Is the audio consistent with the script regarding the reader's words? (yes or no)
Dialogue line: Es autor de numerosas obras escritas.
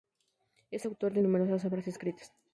yes